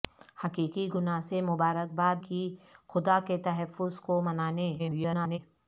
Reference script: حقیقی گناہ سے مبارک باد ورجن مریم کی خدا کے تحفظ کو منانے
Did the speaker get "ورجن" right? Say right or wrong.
wrong